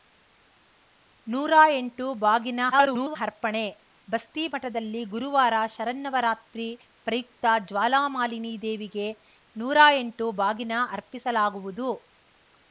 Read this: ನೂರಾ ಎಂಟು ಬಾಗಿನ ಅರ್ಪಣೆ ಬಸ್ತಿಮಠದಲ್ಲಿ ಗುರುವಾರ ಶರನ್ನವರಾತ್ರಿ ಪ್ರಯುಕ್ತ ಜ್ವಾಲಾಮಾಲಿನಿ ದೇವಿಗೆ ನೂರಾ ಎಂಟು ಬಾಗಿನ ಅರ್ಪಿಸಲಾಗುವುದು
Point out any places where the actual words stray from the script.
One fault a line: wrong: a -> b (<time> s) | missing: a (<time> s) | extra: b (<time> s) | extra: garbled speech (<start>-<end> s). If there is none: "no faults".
extra: garbled speech (2.7-3.2 s)